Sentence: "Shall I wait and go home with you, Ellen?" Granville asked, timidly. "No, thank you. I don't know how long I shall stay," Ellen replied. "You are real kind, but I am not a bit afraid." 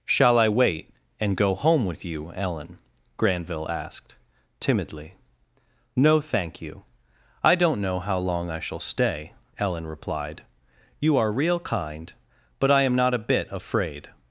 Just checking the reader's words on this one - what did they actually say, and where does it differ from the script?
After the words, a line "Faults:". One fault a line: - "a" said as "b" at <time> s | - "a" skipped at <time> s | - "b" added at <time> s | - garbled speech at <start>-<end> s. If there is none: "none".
"Shall I wait and go home with you, Ellen?" Granville asked, timidly. "No, thank you. I don't know how long I shall stay," Ellen replied. "You are real kind, but I am not a bit afraid."
Faults:
none